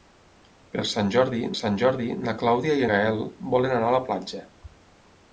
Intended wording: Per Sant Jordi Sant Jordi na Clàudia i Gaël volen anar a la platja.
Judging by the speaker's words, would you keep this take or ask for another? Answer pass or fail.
pass